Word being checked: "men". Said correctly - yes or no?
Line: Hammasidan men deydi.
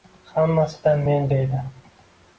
yes